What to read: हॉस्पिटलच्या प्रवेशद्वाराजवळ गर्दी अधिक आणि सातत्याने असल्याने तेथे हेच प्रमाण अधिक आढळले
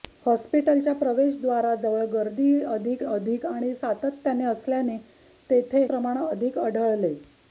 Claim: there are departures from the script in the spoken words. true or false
true